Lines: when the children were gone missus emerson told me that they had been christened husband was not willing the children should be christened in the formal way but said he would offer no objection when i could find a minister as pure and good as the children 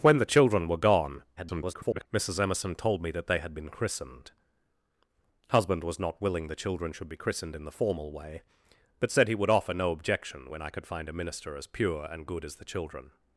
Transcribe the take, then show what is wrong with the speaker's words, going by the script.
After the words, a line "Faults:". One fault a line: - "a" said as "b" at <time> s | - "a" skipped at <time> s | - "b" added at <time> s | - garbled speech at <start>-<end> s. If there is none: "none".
when the children were gone [garbled] missus emerson told me that they had been christened husband was not willing the children should be christened in the formal way but said he would offer no objection when i could find a minister as pure and good as the children
Faults:
- garbled speech at 1.4-2.1 s